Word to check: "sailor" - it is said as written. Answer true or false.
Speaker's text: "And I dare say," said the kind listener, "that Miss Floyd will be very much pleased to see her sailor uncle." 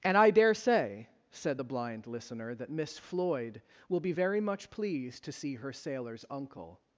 false